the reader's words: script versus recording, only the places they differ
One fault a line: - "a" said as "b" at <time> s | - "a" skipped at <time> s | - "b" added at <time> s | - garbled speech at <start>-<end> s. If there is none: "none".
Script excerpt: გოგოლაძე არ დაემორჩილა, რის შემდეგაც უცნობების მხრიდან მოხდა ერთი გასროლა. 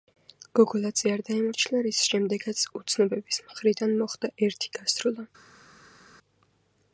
none